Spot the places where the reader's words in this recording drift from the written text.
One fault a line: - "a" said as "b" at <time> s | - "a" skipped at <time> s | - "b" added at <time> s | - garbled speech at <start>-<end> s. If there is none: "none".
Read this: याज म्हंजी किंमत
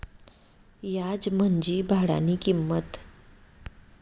- "भाडानी" added at 1.9 s